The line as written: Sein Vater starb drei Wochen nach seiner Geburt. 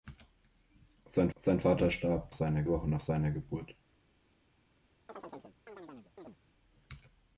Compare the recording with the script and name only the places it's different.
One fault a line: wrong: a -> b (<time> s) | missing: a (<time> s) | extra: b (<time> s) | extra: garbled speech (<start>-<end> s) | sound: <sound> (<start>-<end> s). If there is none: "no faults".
extra: sein (1.4 s)
wrong: drei -> seiner (2.3 s)
sound: chirp (5.1-6.4 s)